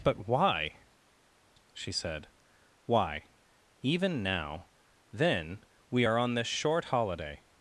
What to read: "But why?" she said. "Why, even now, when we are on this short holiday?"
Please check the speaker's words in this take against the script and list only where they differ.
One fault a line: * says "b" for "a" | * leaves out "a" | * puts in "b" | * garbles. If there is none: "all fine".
* says "then" for "when"